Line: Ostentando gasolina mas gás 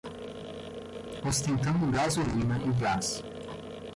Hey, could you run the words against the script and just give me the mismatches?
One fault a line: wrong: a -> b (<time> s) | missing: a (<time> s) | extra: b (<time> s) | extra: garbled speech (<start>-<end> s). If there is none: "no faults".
wrong: mas -> e (2.6 s)